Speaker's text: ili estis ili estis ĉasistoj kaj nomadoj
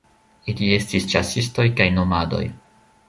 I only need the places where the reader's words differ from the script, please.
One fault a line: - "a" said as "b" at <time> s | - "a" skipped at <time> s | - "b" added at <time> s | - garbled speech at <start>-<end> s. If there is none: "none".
- "ili estis" skipped at 1.1 s